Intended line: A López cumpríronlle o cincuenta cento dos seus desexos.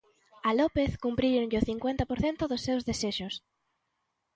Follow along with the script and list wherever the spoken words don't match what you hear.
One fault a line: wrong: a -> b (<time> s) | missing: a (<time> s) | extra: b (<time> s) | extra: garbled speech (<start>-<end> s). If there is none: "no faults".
extra: por (2.1 s)